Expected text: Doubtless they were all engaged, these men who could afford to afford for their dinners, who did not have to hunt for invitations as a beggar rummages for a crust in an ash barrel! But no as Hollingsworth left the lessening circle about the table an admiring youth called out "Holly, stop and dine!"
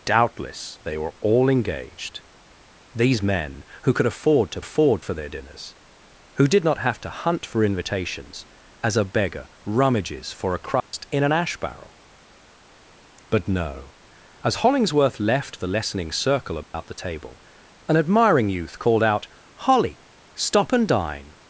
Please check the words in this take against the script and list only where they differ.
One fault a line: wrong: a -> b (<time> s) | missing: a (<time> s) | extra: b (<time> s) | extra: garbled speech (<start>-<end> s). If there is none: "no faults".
no faults